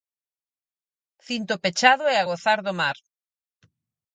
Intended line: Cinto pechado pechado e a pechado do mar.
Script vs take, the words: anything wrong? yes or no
yes